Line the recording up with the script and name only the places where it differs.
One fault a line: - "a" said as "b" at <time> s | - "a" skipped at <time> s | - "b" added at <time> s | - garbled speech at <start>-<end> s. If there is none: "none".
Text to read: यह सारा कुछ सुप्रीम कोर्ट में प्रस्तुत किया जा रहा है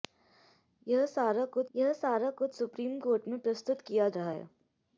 - "यह सारा कुछ" added at 1.7 s
- "जा" skipped at 4.1 s